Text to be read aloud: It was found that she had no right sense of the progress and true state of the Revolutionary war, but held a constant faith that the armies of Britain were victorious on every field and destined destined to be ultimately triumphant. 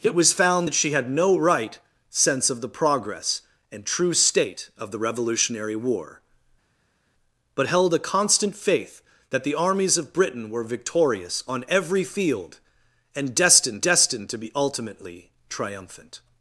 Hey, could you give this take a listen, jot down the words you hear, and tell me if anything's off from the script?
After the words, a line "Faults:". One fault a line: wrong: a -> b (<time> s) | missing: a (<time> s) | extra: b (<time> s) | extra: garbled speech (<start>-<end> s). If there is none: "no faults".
It was found that she had no right sense of the progress and true state of the Revolutionary war, but held a constant faith that the armies of Britain were victorious on every field and destined destined to be ultimately triumphant.
Faults:
no faults